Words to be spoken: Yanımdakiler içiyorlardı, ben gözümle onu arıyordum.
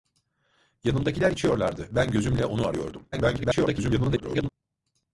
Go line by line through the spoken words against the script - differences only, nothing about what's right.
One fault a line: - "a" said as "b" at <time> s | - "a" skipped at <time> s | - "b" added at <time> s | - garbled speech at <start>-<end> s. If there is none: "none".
- garbled speech at 3.1-4.5 s